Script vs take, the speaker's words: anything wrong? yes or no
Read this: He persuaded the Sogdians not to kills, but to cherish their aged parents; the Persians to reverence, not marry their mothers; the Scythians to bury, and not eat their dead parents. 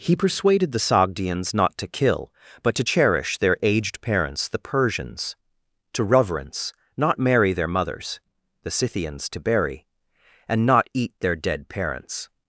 yes